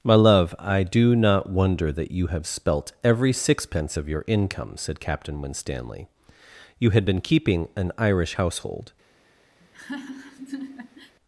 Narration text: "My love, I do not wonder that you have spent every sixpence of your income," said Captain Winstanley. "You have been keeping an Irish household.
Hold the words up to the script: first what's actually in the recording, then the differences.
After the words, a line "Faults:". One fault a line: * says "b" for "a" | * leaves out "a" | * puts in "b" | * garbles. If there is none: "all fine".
"My love, I do not wonder that you have spelt every sixpence of your income," said Captain Winstanley. "You had been keeping an Irish household.
Faults:
* says "spelt" for "spent"
* says "had" for "have"